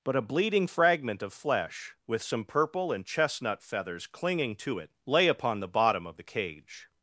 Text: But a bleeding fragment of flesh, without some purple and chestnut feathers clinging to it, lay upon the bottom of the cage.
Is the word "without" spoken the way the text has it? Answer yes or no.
no